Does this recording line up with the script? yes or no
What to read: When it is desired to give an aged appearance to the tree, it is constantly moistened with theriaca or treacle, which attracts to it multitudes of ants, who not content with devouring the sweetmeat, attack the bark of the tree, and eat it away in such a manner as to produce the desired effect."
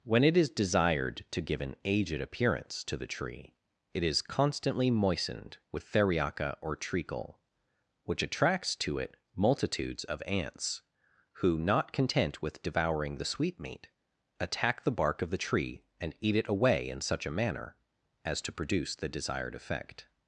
yes